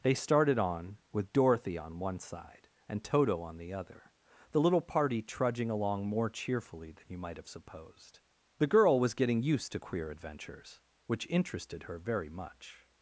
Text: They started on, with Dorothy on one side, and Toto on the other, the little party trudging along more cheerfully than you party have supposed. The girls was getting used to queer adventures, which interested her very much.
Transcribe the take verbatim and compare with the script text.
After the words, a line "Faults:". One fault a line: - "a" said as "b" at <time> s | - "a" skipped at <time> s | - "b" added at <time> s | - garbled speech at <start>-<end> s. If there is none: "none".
They started on, with Dorothy on one side, and Toto on the other, the little party trudging along more cheerfully than you might have supposed. The girl was getting used to queer adventures, which interested her very much.
Faults:
- "party" said as "might" at 7.2 s
- "girls" said as "girl" at 8.7 s